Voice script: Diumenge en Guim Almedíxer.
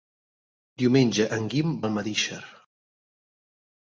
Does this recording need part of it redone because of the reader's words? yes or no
no